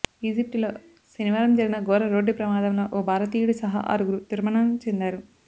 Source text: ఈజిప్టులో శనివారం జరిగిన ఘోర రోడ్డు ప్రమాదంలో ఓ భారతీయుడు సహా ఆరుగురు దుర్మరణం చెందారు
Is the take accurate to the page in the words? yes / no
yes